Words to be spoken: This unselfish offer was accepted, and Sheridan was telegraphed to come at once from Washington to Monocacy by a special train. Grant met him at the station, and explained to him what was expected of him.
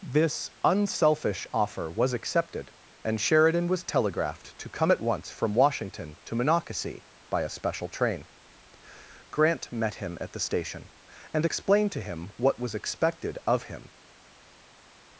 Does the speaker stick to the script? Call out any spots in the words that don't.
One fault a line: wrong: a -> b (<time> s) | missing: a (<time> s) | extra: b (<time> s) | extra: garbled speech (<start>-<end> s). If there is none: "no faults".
no faults